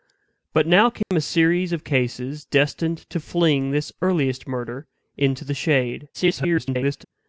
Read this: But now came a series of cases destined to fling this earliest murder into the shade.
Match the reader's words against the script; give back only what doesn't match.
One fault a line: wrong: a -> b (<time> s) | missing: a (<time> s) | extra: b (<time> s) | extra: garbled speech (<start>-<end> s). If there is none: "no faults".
extra: garbled speech (6.1-7.0 s)